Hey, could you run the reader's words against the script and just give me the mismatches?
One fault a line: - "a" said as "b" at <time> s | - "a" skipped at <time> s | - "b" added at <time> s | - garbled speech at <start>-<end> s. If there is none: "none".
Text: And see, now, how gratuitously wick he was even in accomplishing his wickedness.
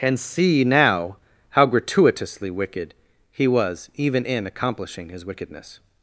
- "wick" said as "wicked" at 2.5 s